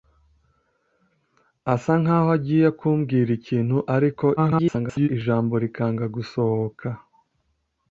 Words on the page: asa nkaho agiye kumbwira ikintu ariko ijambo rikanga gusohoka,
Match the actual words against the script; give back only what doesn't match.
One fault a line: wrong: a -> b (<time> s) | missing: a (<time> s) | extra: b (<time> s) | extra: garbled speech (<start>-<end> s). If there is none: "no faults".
extra: garbled speech (4.4-5.1 s)